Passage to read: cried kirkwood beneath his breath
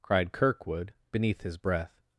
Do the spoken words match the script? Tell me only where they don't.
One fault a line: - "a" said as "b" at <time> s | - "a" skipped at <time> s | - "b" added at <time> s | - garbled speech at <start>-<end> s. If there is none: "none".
none